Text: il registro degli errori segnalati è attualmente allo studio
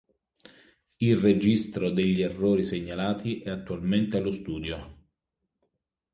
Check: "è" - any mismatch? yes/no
no